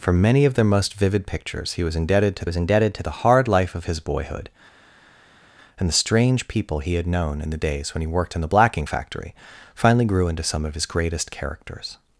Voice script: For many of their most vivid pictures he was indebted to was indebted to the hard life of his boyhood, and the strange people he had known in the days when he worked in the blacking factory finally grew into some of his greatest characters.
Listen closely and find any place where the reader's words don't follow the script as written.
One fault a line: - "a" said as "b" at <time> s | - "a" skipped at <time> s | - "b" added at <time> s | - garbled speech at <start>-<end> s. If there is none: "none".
none